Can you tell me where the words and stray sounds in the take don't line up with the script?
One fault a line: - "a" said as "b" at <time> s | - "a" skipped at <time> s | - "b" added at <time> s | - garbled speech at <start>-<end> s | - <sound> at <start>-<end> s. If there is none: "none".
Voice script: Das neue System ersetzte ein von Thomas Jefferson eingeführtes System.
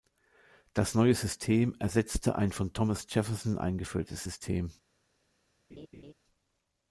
- laugh at 5.7-6.1 s